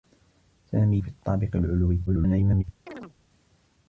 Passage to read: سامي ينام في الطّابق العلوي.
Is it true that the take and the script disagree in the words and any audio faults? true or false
true